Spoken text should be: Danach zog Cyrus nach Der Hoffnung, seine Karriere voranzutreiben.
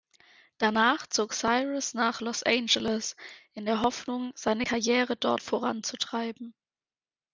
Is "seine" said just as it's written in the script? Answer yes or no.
yes